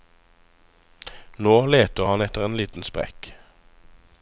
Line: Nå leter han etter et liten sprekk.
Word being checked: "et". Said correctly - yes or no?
no